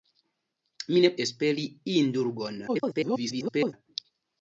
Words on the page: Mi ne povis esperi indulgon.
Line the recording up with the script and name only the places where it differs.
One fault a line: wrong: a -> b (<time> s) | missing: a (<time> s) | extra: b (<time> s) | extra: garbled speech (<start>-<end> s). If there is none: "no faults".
missing: povis (1.1 s)
extra: garbled speech (2.7-3.7 s)